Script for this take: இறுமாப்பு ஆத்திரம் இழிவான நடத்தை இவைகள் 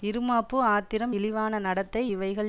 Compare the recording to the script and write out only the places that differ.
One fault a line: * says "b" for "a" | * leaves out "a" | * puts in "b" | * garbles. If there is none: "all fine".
all fine